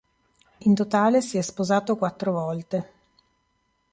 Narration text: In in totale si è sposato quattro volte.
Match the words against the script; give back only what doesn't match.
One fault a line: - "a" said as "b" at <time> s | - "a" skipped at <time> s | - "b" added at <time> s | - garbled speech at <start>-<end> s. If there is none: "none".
- "in" skipped at 0.8 s